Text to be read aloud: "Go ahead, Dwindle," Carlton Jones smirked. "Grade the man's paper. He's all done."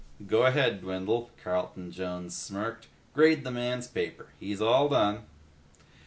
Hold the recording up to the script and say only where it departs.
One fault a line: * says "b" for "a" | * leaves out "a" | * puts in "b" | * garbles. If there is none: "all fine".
all fine